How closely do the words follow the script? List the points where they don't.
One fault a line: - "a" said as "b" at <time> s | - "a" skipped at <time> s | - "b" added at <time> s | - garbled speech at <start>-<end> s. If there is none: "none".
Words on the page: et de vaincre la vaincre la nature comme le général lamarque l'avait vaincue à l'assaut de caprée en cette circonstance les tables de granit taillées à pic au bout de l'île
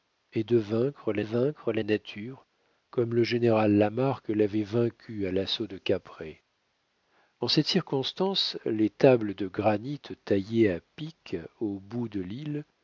none